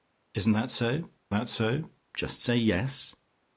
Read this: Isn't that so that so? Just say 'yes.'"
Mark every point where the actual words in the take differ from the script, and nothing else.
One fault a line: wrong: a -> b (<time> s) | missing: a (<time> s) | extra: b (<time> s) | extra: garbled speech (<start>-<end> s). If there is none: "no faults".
no faults